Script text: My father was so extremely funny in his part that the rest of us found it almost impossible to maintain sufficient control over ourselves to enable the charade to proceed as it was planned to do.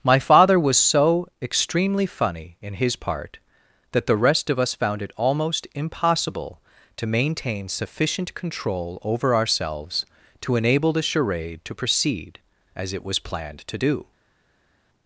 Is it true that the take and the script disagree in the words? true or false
false